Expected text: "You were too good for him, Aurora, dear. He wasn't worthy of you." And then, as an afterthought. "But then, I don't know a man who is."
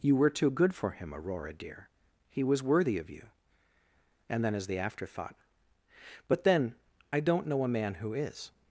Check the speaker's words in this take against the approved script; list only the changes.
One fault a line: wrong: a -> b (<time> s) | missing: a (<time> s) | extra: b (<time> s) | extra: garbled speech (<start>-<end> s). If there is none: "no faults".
wrong: wasn't -> was (2.4 s)
wrong: an -> the (4.7 s)